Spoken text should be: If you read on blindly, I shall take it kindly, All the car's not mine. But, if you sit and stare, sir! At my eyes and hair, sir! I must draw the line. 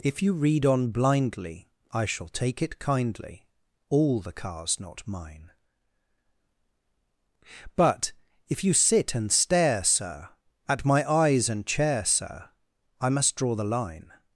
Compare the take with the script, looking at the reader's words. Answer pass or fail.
fail